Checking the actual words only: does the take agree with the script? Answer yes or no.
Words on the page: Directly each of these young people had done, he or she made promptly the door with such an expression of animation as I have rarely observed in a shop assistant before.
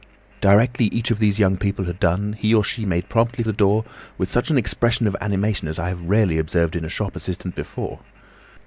yes